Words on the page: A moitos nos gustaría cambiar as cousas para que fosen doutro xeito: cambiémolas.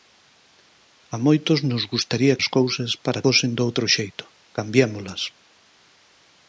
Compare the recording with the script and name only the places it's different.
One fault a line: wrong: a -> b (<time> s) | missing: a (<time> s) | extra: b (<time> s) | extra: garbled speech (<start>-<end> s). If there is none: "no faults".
missing: cambiar (2.4 s)
missing: que (3.2 s)